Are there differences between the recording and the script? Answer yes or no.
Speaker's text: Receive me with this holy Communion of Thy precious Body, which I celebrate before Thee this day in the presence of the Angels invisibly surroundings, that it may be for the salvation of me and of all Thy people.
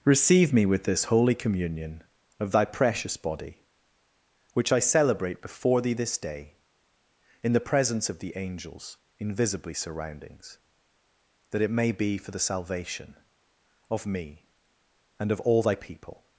no